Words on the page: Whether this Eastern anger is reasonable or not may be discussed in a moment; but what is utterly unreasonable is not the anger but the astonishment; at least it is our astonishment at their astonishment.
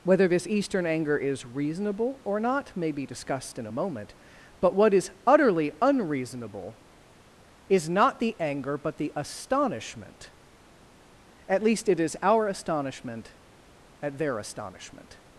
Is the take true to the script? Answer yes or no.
yes